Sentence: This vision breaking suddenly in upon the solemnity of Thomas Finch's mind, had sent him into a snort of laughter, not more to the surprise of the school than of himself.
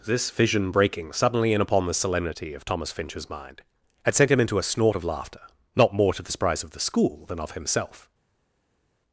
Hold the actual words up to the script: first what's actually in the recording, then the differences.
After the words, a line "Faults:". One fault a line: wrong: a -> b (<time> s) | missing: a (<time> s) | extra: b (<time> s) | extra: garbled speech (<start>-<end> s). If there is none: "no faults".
This vision breaking suddenly in upon the solemnity of Thomas Finch's mind, had sent him into a snort of laughter, not more to the surprise of the school than of himself.
Faults:
no faults